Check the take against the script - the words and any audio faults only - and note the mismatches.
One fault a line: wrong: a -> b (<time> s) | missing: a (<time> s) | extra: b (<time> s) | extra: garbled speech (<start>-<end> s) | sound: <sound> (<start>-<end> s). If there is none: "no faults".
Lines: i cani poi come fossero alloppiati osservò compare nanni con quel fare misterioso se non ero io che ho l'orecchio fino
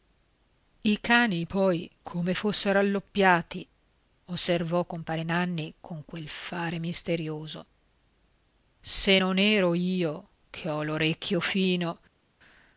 no faults